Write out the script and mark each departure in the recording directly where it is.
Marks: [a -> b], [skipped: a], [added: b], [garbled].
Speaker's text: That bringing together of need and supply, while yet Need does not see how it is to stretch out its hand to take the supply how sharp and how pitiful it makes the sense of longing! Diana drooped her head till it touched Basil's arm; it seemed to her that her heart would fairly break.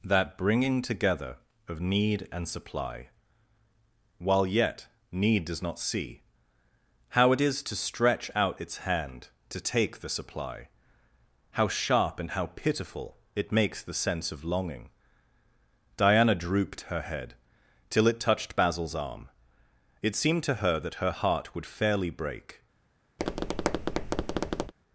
That bringing together of need and supply, while yet Need does not see how it is to stretch out its hand to take the supply how sharp and how pitiful it makes the sense of longing! Diana drooped her head till it touched Basil's arm; it seemed to her that her heart would fairly break.